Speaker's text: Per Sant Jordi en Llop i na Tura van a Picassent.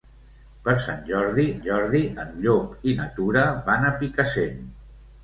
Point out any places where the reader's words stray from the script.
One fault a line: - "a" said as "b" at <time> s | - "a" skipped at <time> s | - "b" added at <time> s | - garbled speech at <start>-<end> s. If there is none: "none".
- "Jordi" added at 1.7 s